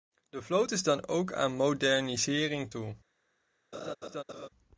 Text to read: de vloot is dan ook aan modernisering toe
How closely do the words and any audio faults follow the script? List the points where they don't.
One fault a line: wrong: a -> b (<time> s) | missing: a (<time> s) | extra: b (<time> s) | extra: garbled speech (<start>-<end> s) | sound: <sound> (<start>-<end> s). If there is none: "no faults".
sound: laugh (3.7-4.5 s)